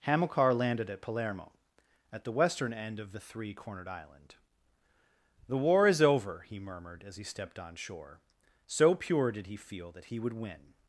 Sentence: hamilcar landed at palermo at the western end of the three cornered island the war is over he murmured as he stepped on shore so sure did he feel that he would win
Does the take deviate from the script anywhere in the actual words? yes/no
yes